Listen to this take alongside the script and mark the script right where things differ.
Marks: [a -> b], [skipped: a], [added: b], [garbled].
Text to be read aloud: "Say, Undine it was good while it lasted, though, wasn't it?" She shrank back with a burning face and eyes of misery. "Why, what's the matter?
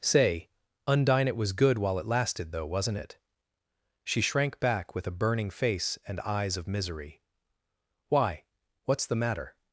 "Say, Undine it was good while it lasted, though, wasn't it?" She shrank back with a burning face and eyes of misery. "Why, what's the matter?